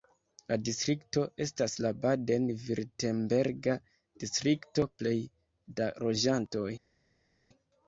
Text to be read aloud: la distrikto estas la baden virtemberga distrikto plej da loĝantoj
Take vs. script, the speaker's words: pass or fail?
pass